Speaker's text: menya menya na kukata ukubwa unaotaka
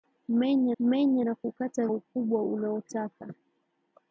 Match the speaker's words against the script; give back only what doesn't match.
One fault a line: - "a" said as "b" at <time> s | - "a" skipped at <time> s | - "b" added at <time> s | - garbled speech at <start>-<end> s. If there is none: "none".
none